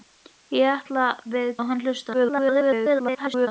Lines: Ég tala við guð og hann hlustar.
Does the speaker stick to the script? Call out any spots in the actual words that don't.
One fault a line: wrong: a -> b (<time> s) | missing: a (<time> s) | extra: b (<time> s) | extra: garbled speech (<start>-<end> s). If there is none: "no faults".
missing: guð (1.5 s)
extra: garbled speech (2.1-3.5 s)